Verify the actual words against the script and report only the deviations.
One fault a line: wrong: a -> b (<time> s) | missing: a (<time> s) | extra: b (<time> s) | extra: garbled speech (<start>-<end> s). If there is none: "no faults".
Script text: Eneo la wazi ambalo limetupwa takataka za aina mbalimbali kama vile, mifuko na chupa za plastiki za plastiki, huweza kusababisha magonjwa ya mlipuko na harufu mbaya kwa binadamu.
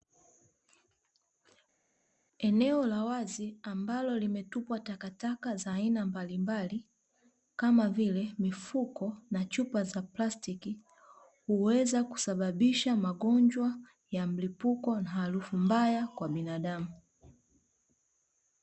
missing: za plastiki (10.8 s)